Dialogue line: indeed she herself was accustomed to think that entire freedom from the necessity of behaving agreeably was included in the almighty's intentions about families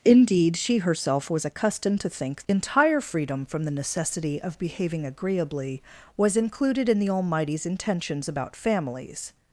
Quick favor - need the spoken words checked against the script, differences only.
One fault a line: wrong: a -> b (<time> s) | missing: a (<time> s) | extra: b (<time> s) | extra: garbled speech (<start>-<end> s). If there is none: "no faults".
missing: that (2.4 s)